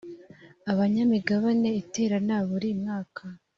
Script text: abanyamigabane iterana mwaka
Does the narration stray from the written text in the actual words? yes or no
yes